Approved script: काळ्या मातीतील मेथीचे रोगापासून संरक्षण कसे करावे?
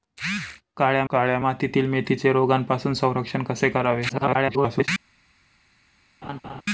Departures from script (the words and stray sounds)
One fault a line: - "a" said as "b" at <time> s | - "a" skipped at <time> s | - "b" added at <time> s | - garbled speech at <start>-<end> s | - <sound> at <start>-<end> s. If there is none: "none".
- "काळ्या" added at 1.1 s
- garbled speech at 4.1-4.9 s
- laugh at 6.2-6.6 s